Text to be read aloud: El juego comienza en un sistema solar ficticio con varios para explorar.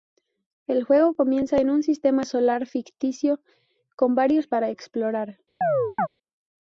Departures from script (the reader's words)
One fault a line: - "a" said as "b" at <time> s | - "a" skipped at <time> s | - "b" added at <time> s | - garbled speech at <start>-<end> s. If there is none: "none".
none